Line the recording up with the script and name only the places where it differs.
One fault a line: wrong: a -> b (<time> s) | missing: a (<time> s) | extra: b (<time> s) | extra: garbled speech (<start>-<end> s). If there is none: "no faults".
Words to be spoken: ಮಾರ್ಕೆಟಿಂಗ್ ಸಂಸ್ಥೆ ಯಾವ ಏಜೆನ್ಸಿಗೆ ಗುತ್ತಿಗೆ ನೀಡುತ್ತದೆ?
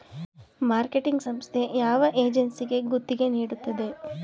no faults